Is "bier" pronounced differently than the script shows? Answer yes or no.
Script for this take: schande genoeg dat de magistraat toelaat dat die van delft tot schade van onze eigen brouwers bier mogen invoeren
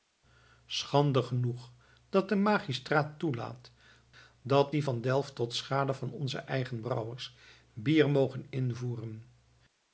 no